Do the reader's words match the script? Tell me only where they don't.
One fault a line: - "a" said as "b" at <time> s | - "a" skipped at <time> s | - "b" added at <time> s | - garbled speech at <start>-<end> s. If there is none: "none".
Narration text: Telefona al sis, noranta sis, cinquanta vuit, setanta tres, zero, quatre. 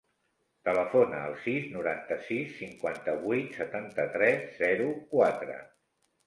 none